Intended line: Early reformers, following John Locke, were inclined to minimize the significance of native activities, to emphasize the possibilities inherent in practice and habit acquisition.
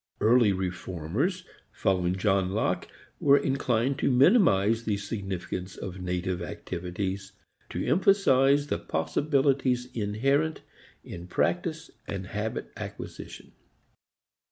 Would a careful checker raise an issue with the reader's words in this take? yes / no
no